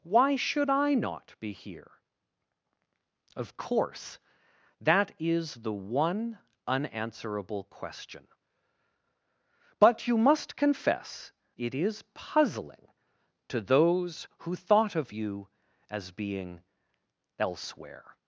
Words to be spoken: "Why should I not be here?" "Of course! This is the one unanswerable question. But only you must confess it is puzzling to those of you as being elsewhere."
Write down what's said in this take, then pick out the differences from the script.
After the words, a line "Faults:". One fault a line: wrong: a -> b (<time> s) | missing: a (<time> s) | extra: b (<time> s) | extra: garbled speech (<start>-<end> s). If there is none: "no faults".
"Why should I not be here?" "Of course! That is the one unanswerable question. But you must confess it is puzzling to those who thought of you as being elsewhere."
Faults:
wrong: This -> That (4.8 s)
missing: only (10.1 s)
extra: who thought (14.4 s)